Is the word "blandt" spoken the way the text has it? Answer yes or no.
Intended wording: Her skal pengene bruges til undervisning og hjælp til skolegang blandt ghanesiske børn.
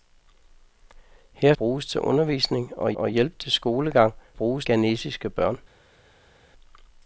no